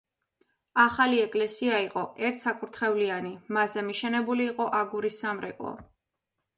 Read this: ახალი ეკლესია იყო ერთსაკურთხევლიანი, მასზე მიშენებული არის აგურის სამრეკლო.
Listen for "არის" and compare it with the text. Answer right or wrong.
wrong